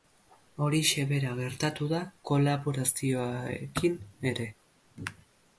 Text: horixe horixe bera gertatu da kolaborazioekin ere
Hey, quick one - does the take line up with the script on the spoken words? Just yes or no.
no